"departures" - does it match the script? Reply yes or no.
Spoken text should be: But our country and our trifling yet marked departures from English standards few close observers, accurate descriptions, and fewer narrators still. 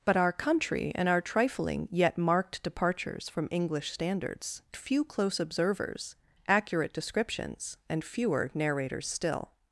yes